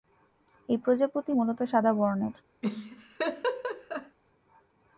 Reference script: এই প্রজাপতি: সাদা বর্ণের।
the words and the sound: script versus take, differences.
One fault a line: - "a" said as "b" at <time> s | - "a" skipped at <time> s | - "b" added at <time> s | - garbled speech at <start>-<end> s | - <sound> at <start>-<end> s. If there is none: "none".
- "মূলত" added at 1.3 s
- laugh at 2.6-4.2 s